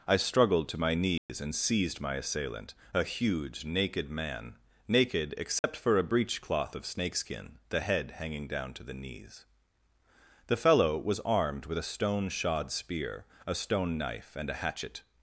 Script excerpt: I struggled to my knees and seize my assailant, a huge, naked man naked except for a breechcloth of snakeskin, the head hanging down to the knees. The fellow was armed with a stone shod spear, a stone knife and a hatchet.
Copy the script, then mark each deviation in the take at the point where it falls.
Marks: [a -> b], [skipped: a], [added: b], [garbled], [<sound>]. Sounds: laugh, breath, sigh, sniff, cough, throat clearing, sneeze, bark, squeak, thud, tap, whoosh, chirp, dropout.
I struggled to my knees [dropout] and [seize -> seized] my assailant, a huge, naked man naked except [dropout] for a breechcloth of snakeskin, the head hanging down to the knees. The fellow was armed with a stone shod spear, a stone knife and a hatchet.